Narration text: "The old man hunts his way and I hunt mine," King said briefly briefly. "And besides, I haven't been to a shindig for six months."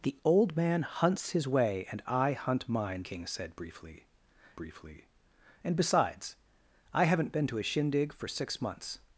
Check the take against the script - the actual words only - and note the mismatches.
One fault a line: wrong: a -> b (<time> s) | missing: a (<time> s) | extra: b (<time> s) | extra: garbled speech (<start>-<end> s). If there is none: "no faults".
no faults